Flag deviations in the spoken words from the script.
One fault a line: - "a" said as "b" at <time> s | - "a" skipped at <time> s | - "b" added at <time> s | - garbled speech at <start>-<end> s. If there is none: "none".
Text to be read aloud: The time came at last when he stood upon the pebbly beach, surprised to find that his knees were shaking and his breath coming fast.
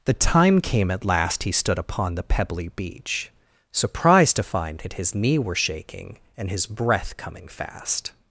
- "when" skipped at 1.4 s
- "knees" said as "knee" at 5.1 s